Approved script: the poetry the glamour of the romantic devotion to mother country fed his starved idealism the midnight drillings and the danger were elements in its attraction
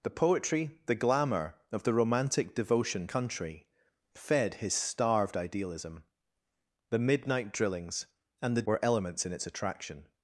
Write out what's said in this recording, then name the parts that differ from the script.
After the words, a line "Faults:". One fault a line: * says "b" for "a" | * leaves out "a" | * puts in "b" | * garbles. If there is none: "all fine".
the poetry the glamour of the romantic devotion country fed his starved idealism the midnight drillings and the were elements in its attraction
Faults:
* leaves out "to mother"
* leaves out "danger"